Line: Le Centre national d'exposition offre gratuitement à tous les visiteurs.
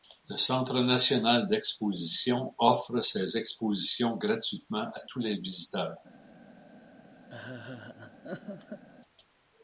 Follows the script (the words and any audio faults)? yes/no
no